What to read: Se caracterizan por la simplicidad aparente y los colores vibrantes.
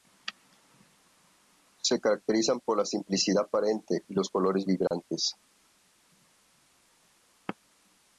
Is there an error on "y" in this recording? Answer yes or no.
no